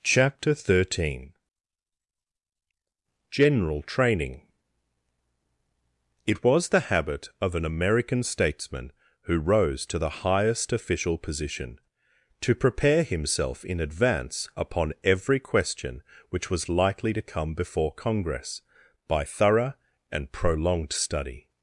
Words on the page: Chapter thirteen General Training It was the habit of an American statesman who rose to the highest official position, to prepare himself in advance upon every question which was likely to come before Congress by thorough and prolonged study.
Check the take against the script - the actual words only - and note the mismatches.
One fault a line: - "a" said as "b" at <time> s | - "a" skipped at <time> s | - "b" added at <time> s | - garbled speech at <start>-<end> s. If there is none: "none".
none